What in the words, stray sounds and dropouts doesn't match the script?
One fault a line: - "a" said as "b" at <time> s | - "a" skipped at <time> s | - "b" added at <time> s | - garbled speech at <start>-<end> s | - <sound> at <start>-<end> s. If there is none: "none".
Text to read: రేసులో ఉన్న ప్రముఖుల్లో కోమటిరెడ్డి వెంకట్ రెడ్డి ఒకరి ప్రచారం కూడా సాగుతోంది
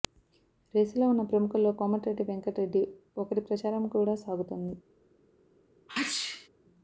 - sneeze at 5.9-6.5 s